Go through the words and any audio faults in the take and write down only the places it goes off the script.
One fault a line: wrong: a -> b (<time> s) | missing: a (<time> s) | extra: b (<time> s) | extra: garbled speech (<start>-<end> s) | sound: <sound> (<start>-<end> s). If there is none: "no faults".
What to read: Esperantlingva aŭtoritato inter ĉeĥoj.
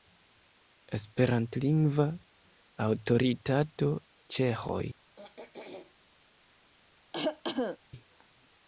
missing: inter (3.9 s)
sound: throat clearing (5.2-5.9 s)
sound: cough (7.1-7.8 s)